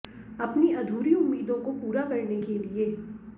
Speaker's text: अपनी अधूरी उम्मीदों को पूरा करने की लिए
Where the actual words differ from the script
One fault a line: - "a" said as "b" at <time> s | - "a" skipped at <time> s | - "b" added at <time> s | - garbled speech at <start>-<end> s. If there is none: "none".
- "की" said as "के" at 2.4 s